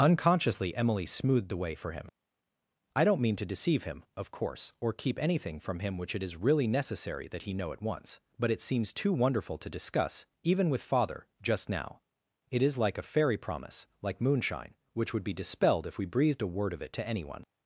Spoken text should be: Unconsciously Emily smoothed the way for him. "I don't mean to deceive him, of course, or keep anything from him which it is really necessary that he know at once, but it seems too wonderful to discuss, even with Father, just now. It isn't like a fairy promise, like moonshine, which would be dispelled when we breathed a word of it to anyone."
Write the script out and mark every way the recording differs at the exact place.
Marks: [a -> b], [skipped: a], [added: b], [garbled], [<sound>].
Unconsciously Emily smoothed the way for him. "I don't mean to deceive him, of course, or keep anything from him which it is really necessary that he know at once, but it seems too wonderful to discuss, even with Father, just now. It [isn't -> is] like a fairy promise, like moonshine, which would be dispelled [when -> if] we breathed a word of it to anyone."